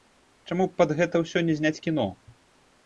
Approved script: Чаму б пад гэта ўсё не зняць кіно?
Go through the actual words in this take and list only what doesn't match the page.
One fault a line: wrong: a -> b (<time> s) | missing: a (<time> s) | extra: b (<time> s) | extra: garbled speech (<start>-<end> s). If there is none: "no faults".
no faults